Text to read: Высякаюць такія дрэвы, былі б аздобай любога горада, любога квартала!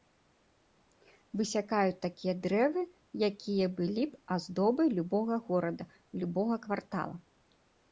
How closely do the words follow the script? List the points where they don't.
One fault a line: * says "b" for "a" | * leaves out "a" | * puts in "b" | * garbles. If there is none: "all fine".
* puts in "якія"